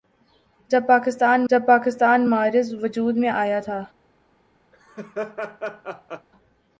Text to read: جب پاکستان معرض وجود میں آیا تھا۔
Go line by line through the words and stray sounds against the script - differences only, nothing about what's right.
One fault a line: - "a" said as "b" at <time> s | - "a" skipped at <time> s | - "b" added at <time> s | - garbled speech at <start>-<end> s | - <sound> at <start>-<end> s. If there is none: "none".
- "جب پاکستان" added at 1.5 s
- laugh at 4.7-6.3 s